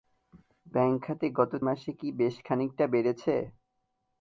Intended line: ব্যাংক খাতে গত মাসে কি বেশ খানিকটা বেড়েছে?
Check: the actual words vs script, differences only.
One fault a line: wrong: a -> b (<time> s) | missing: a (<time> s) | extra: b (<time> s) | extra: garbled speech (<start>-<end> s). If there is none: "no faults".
no faults